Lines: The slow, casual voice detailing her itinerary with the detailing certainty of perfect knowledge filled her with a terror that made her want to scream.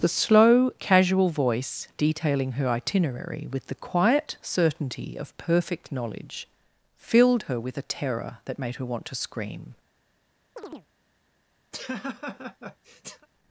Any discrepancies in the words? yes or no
yes